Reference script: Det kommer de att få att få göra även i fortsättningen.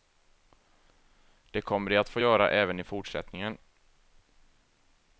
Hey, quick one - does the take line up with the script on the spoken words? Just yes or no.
no